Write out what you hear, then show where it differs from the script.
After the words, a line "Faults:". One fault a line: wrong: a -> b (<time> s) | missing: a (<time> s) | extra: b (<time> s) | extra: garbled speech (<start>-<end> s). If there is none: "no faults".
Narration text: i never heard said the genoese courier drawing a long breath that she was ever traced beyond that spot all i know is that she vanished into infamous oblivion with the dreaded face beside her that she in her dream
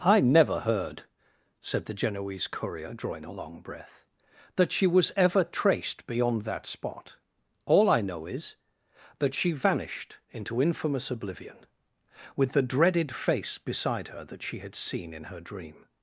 i never heard said the genoese courier drawing a long breath that she was ever traced beyond that spot all i know is that she vanished into infamous oblivion with the dreaded face beside her that she had seen in her dream
Faults:
extra: had seen (14.6 s)